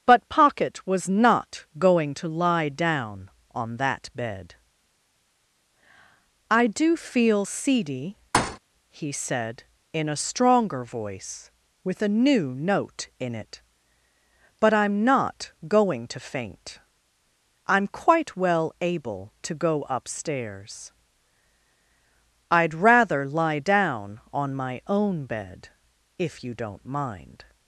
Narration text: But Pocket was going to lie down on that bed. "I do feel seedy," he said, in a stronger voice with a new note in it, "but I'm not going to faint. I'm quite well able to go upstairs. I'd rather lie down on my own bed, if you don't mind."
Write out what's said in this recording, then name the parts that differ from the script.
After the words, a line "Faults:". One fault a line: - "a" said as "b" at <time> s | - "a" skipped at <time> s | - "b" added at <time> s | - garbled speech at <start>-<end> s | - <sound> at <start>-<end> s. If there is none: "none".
But Pocket was not going to lie down on that bed. "I do feel seedy," he said, in a stronger voice with a new note in it, "but I'm not going to faint. I'm quite well able to go upstairs. I'd rather lie down on my own bed, if you don't mind."
Faults:
- "not" added at 1.1 s
- thud at 8.3-8.6 s